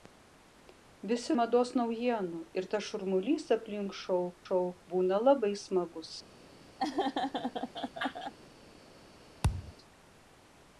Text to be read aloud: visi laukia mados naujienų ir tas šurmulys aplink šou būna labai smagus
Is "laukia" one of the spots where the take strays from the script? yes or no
yes